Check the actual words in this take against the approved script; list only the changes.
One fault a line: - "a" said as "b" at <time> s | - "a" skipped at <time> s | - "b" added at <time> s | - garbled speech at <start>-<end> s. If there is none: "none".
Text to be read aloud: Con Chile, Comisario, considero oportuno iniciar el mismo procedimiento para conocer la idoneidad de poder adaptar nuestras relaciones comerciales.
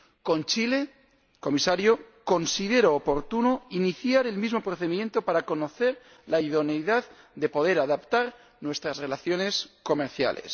none